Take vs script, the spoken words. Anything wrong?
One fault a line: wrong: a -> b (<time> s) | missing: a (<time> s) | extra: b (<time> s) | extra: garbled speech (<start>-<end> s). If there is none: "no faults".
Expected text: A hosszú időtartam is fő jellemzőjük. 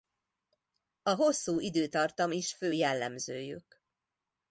no faults